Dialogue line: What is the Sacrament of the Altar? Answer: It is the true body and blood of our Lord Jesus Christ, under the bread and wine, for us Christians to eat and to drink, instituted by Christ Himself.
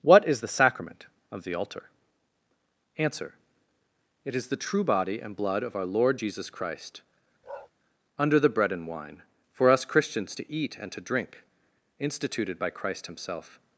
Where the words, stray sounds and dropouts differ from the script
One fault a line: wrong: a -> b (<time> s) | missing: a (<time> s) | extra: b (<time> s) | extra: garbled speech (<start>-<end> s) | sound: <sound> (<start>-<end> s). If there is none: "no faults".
sound: bark (7.4-7.7 s)